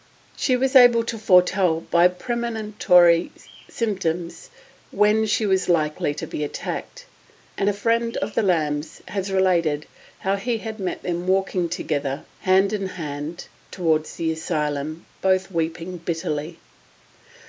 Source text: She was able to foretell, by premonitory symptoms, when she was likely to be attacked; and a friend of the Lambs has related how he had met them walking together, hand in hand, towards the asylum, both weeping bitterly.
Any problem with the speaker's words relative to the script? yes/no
no